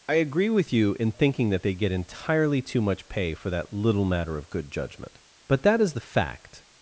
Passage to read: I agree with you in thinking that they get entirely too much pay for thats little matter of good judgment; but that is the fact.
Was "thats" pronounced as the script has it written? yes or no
no